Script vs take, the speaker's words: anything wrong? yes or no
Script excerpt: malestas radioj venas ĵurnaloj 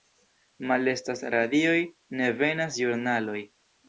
yes